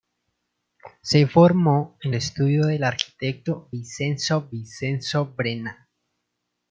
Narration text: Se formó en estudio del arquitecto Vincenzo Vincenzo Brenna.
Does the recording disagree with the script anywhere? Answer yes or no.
no